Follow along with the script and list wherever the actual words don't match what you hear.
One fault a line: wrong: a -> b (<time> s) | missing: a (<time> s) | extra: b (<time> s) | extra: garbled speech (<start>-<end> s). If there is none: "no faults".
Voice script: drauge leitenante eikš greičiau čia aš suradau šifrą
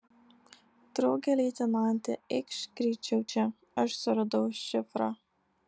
no faults